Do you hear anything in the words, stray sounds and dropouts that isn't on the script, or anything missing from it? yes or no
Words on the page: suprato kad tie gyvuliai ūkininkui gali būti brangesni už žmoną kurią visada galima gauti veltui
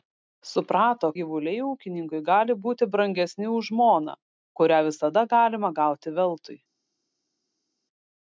yes